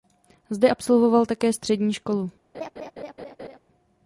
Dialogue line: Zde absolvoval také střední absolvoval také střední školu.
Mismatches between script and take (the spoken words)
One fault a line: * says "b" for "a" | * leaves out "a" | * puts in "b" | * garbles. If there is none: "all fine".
* leaves out "absolvoval také střední"